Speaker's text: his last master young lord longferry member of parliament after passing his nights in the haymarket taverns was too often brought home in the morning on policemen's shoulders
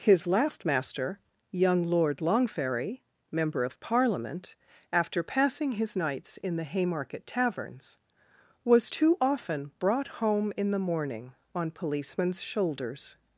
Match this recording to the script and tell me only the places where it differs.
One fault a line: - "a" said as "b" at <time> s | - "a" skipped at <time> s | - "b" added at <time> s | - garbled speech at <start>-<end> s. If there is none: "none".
none